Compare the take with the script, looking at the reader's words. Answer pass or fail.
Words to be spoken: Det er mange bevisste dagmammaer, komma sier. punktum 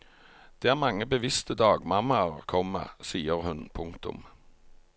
fail